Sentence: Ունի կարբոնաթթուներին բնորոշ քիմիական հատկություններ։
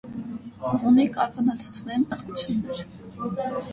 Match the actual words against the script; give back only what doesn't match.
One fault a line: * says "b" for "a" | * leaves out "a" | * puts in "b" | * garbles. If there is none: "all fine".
* leaves out "բնորոշ քիմիական"